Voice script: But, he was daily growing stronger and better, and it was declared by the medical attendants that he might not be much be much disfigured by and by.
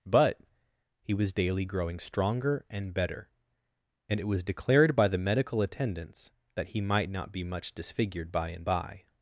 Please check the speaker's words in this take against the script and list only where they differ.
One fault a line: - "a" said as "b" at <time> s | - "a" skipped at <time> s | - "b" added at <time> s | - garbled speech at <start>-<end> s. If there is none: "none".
- "be much" skipped at 7.7 s